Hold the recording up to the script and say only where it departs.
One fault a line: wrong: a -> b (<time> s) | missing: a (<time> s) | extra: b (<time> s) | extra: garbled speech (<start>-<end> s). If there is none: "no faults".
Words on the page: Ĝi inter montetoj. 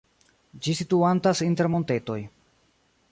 extra: situantas (0.8 s)